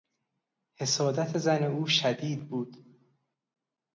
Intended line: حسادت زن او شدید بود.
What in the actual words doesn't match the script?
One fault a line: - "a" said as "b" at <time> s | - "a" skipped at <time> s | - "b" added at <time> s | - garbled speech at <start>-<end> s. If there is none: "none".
none